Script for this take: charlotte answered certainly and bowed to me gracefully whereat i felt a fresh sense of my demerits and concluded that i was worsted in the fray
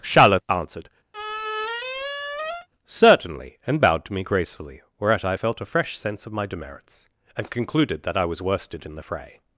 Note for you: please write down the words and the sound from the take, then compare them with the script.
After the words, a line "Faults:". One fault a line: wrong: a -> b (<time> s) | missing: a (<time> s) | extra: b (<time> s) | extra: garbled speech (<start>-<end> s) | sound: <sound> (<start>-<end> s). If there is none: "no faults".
charlotte answered certainly and bowed to me gracefully whereat i felt a fresh sense of my demerits and concluded that i was worsted in the fray
Faults:
sound: squeak (1.1-2.7 s)